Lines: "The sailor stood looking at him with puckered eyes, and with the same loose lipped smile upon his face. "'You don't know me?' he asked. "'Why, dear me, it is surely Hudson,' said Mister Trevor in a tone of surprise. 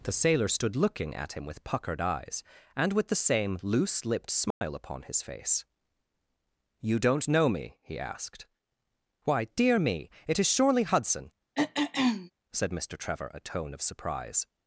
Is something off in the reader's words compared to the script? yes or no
yes